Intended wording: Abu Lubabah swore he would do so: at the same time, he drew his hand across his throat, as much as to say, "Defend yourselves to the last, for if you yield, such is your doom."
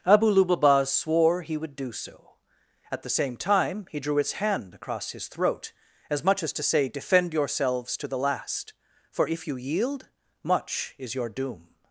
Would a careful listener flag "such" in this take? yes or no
yes